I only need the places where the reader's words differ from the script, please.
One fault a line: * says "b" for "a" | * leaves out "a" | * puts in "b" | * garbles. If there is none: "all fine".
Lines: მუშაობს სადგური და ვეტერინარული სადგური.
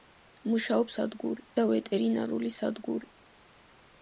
all fine